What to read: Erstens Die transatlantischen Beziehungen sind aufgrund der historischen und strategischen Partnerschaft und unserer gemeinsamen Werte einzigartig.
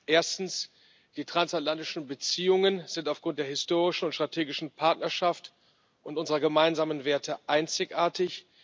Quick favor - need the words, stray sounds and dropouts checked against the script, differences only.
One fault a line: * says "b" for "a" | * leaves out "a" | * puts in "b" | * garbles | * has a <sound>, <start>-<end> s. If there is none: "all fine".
all fine